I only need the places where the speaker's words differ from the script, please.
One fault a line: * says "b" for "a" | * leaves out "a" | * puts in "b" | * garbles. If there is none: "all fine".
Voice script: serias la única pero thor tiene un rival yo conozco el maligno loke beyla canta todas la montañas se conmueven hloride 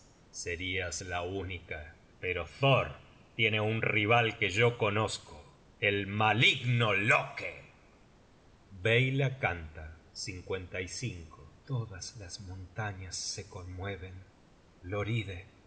* puts in "que"
* says "las" for "la"